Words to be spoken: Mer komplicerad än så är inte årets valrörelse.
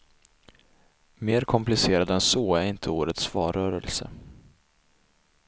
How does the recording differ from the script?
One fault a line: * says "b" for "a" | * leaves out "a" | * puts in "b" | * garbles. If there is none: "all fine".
all fine